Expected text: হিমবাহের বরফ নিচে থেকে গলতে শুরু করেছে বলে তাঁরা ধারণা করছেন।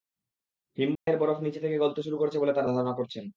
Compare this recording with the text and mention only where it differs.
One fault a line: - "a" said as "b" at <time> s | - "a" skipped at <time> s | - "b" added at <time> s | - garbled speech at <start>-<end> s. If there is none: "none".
none